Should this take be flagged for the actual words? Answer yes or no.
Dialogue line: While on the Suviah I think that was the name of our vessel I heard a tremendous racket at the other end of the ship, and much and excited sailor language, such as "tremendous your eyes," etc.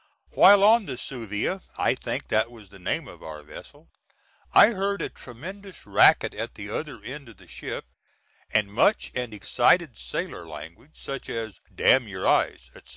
yes